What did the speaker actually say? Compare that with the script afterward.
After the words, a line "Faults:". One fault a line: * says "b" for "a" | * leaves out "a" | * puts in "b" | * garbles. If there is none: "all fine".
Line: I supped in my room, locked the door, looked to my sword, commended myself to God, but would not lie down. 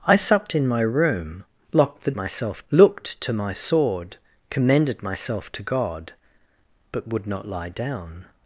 I supped in my room, locked the myself, looked to my sword, commended myself to God, but would not lie down.
Faults:
* says "myself" for "door"